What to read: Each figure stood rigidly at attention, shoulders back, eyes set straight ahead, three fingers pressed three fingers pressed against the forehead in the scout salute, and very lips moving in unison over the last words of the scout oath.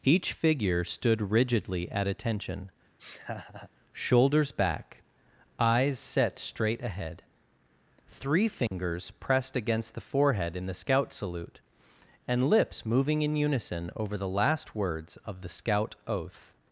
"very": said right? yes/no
no